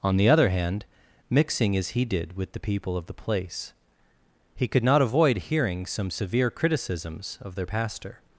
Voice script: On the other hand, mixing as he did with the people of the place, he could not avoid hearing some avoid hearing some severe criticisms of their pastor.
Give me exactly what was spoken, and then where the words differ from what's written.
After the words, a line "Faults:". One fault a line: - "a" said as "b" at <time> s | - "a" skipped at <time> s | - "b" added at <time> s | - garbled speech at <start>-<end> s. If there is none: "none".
On the other hand, mixing as he did with the people of the place, he could not avoid hearing some severe criticisms of their pastor.
Faults:
- "avoid hearing some" skipped at 6.1 s